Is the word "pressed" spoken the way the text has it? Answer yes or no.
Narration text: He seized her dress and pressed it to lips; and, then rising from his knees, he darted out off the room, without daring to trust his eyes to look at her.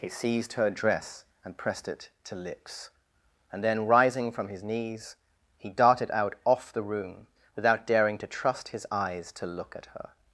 yes